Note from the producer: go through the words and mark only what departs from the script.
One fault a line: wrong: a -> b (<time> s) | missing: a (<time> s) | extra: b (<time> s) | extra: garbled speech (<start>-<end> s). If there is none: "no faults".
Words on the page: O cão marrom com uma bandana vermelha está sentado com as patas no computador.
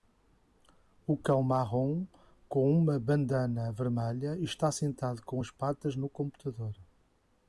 no faults